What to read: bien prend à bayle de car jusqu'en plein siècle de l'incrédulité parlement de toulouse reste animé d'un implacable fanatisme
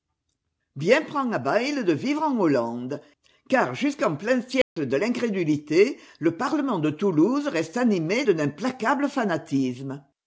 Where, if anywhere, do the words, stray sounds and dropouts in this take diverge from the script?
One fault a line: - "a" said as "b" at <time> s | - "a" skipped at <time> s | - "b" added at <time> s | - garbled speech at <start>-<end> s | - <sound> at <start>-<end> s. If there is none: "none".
- "vivre en hollande" added at 1.9 s
- dropout at 4.6-4.8 s
- "le" added at 6.2 s